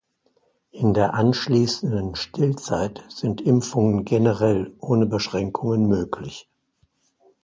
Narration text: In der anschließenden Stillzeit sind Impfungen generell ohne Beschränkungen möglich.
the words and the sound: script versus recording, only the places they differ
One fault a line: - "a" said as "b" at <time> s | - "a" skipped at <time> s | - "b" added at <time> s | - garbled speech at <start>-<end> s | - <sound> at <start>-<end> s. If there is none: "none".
none